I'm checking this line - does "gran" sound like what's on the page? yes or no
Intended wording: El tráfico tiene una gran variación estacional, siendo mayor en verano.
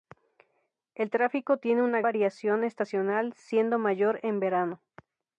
no